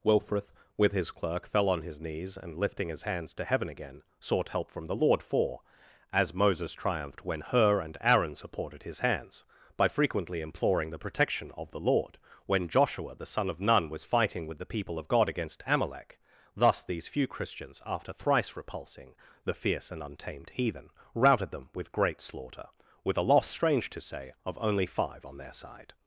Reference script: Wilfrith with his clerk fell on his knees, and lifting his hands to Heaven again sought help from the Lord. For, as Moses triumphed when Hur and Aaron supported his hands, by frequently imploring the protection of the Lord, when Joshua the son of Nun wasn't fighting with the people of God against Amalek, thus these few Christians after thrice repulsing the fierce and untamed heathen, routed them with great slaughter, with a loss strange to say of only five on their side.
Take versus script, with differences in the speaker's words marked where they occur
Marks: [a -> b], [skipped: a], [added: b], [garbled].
Wilfrith with his clerk fell on his knees, and lifting his hands to Heaven again sought help from the Lord. For, as Moses triumphed when Hur and Aaron supported his hands, by frequently imploring the protection of the Lord, when Joshua the son of Nun [wasn't -> was] fighting with the people of God against Amalek, thus these few Christians after thrice repulsing the fierce and untamed heathen, routed them with great slaughter, with a loss strange to say of only five on their side.